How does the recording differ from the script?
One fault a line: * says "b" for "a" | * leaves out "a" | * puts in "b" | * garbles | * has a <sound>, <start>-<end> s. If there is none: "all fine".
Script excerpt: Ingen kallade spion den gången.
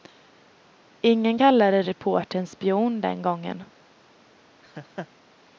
* puts in "reportern"
* has a laugh, 4.6-5.1 s